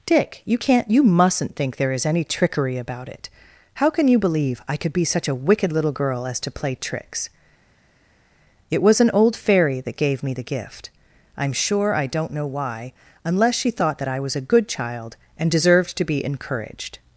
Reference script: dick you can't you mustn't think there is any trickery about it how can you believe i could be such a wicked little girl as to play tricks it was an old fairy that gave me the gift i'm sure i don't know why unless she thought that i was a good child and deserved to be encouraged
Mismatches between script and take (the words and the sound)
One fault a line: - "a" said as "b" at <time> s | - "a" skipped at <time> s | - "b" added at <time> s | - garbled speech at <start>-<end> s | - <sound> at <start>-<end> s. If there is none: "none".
none